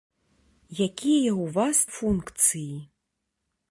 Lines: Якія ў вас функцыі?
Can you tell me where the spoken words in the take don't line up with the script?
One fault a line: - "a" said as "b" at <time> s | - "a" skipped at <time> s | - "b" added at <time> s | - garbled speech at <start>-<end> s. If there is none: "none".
none